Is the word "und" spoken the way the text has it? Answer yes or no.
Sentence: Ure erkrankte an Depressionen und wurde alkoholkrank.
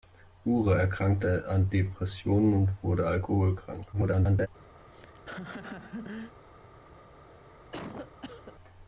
yes